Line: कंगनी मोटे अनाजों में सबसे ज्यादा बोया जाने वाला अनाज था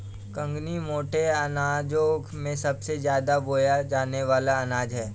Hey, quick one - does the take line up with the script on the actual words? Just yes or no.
no